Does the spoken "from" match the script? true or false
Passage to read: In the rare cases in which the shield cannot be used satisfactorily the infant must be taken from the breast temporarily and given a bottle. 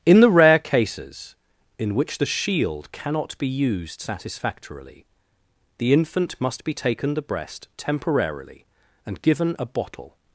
false